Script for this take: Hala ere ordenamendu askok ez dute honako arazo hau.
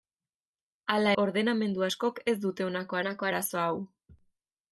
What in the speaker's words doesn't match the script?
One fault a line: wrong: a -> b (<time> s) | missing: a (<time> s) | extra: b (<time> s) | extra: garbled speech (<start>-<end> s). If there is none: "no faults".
missing: ere (1.1 s)
extra: honako (3.0 s)